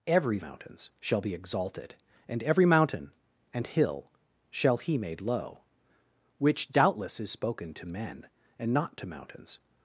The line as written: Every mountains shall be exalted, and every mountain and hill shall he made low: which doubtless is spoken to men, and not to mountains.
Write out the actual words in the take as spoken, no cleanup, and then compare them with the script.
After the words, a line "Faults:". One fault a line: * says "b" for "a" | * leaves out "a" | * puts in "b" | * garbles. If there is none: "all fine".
Every mountains shall be exalted, and every mountain and hill shall he made low: which doubtless is spoken to men, and not to mountains.
Faults:
all fine